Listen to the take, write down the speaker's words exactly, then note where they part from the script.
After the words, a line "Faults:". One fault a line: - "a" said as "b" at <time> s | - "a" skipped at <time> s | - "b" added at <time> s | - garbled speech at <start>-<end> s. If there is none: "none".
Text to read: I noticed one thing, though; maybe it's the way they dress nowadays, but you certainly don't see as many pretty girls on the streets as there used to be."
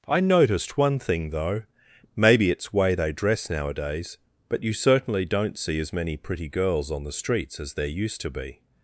I noticed one thing, though; maybe it's way they dress nowadays, but you certainly don't see as many pretty girls on the streets as there used to be."
Faults:
- "the" skipped at 2.7 s